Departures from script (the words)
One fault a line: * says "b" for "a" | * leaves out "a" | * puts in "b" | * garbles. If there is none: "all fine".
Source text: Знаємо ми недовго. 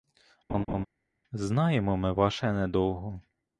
* puts in "ваше"